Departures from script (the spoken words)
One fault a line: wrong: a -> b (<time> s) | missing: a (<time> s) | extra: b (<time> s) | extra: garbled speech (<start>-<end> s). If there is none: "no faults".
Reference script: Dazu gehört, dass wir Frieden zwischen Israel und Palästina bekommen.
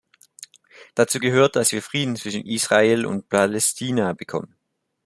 no faults